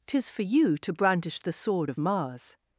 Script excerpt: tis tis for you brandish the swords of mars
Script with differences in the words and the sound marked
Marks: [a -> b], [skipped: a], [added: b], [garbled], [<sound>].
tis [skipped: tis] for you [added: to] brandish the [swords -> sword] of mars